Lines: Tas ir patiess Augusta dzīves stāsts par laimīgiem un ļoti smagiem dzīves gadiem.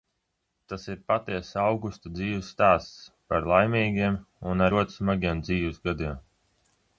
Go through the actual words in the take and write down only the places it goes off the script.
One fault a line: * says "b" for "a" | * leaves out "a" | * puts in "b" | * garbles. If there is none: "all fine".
all fine